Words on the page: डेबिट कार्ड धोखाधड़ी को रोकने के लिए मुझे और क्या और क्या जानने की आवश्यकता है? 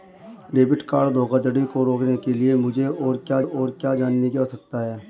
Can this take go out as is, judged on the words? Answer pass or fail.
pass